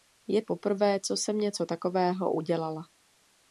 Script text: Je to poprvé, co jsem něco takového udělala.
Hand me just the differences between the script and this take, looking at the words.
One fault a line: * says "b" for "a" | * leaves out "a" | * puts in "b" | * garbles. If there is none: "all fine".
* leaves out "to"